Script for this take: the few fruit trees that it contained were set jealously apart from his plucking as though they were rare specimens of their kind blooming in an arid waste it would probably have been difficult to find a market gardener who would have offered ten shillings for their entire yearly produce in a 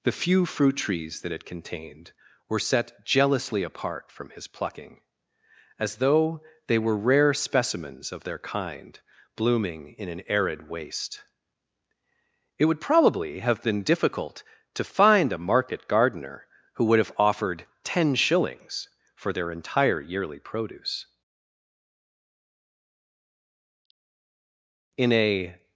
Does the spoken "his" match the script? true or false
true